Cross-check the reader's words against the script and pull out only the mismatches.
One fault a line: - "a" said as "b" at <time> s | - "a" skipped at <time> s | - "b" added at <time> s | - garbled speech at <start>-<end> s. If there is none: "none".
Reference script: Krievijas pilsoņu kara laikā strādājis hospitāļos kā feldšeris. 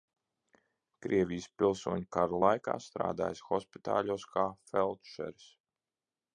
none